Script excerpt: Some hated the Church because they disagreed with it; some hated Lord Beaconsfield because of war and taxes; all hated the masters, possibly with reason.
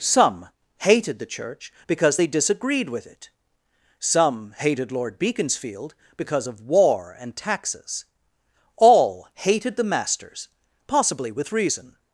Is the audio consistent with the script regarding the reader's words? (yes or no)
yes